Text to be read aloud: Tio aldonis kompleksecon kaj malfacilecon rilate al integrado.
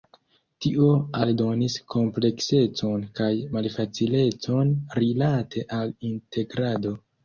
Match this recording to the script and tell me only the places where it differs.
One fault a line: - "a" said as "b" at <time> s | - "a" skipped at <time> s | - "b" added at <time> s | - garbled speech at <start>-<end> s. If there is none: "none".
none